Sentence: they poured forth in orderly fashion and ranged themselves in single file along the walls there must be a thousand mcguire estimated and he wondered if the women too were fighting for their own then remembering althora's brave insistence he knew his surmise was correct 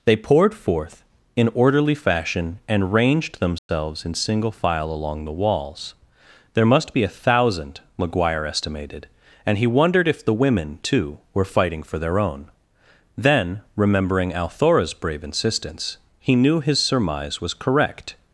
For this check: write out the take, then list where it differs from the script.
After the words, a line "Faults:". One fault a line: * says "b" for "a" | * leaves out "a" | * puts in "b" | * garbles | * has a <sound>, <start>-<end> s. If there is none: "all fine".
they poured forth in orderly fashion and ranged themselves in single file along the walls there must be a thousand mcguire estimated and he wondered if the women too were fighting for their own then remembering althora's brave insistence he knew his surmise was correct
Faults:
* has a dropout, 3.6-3.7 s